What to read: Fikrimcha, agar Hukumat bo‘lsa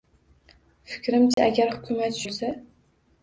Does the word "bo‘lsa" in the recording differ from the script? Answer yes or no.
no